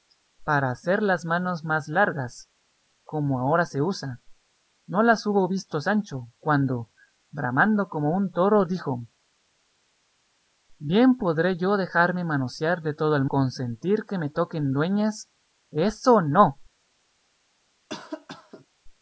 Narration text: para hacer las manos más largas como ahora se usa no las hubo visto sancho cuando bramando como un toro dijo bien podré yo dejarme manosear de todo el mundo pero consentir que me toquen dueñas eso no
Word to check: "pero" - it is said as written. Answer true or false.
false